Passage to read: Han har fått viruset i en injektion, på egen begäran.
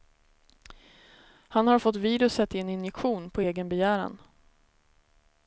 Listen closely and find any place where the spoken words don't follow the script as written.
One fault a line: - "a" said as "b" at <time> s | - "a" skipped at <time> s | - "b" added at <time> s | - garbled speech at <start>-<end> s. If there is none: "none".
none